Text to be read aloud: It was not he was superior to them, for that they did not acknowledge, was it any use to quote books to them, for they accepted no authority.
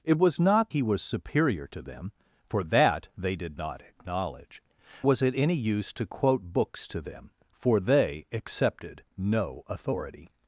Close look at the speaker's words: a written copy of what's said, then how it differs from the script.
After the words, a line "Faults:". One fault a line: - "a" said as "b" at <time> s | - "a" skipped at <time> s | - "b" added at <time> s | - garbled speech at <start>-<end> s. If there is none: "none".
It was not he was superior to them, for that they did not acknowledge, was it any use to quote books to them, for they accepted no authority.
Faults:
none